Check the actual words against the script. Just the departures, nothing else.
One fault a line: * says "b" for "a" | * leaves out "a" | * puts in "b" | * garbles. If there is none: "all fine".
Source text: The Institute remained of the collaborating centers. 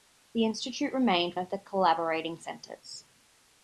all fine